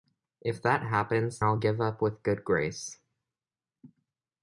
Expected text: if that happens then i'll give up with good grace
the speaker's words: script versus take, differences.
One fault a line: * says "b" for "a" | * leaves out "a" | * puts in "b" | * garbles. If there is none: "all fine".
* leaves out "then"